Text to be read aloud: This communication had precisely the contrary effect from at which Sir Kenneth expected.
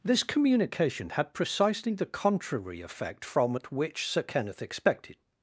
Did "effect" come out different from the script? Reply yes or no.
no